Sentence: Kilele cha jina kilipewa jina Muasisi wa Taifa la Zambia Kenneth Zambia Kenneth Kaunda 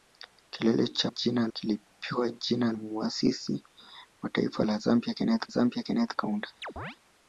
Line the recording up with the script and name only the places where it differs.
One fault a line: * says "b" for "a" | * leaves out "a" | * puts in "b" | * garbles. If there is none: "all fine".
all fine